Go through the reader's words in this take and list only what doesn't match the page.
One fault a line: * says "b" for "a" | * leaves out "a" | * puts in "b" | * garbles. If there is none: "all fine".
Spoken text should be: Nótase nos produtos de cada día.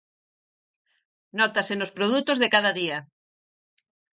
all fine